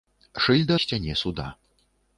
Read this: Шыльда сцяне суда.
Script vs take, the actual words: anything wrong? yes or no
no